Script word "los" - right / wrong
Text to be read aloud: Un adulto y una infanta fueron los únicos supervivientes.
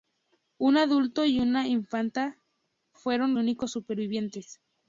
wrong